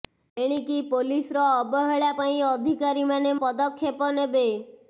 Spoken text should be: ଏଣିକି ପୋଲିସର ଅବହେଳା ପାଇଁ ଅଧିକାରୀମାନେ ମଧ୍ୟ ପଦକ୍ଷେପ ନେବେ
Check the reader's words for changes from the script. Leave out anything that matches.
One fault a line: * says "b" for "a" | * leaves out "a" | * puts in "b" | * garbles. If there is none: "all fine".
* leaves out "ମଧ୍ୟ"